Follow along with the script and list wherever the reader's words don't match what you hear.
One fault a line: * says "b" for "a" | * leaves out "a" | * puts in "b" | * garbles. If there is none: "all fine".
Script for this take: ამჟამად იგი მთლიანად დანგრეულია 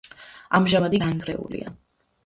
* leaves out "იგი მთლიანად"